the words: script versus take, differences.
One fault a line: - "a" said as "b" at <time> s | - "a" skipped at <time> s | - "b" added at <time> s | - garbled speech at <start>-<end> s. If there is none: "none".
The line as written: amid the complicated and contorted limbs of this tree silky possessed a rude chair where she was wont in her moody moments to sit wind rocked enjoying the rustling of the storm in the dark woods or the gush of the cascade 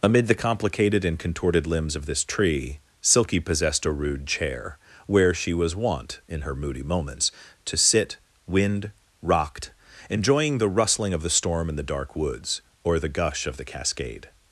none